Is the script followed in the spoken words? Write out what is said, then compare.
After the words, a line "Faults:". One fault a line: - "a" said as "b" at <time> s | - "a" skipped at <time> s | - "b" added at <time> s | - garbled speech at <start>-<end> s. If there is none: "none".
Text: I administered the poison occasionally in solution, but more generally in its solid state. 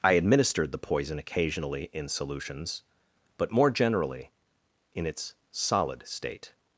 I administered the poison occasionally in solutions, but more generally in its solid state.
Faults:
- "solution" said as "solutions" at 2.1 s